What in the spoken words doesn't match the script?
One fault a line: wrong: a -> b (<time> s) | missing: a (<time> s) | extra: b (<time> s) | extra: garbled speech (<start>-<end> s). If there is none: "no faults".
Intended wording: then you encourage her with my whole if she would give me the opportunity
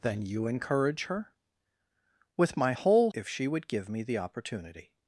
no faults